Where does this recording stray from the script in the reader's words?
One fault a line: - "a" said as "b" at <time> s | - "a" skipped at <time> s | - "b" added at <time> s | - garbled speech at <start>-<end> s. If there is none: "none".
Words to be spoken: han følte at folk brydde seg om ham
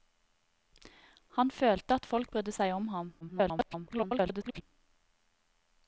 - garbled speech at 3.2-4.6 s